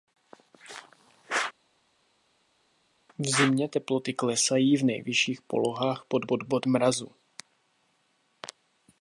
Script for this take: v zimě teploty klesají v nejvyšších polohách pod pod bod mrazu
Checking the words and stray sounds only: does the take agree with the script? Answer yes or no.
yes